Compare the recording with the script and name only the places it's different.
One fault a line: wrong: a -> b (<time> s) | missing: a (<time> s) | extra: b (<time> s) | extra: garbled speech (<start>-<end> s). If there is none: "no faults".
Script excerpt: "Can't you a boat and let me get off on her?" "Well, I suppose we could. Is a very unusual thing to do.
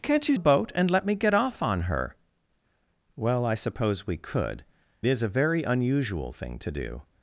no faults